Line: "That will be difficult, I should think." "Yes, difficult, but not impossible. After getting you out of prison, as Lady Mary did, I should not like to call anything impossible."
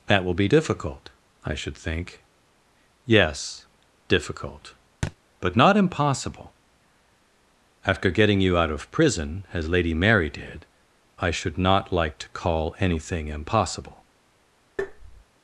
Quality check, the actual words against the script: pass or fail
pass